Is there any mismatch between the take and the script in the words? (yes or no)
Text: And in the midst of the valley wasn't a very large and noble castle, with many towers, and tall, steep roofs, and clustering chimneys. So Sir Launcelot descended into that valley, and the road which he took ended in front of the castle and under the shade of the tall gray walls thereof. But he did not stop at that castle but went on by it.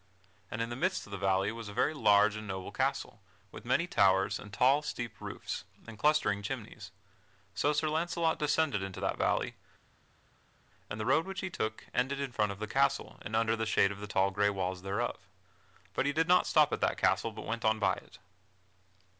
yes